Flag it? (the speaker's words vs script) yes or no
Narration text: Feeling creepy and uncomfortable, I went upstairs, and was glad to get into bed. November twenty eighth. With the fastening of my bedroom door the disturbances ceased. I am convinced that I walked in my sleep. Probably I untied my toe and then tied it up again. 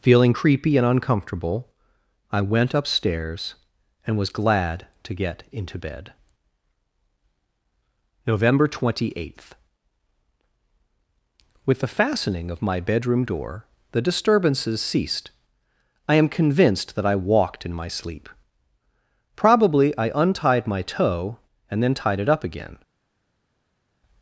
no